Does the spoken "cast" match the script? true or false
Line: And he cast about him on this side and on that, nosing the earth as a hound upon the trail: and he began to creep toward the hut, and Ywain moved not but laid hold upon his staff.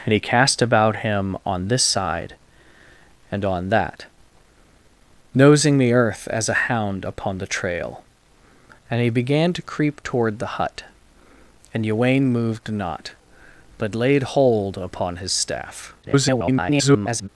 true